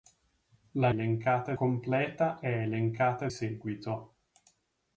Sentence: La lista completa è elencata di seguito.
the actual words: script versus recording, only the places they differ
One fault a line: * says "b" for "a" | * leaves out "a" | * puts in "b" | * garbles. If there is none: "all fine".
* says "elencata" for "lista"
* leaves out "di"